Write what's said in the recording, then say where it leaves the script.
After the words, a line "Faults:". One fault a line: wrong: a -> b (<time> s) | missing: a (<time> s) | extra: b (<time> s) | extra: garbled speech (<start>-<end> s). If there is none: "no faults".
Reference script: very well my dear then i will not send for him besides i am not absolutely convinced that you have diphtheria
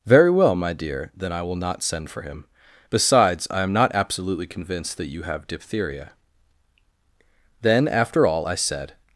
very well my dear then i will not send for him besides i am not absolutely convinced that you have diphtheria then after all i said
Faults:
extra: then after all i said (7.6 s)